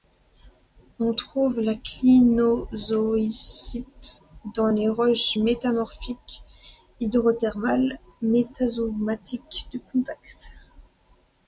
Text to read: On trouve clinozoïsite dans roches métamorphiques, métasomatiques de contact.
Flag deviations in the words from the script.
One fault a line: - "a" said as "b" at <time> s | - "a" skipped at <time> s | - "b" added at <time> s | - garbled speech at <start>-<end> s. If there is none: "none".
- "la" added at 1.6 s
- "les" added at 4.7 s
- "hydrothermales" added at 7.0 s